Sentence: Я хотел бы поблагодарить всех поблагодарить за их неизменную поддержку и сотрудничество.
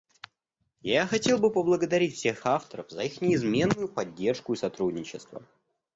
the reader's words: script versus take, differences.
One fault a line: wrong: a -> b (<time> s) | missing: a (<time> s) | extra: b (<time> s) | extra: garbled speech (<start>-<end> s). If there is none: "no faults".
wrong: поблагодарить -> авторов (2.5 s)